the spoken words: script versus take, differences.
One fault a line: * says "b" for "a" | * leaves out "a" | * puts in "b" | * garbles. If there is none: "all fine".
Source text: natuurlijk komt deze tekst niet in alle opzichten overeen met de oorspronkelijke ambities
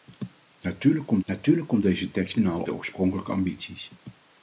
* puts in "natuurlijk komt"
* leaves out "niet"
* leaves out "opzichten overeen met"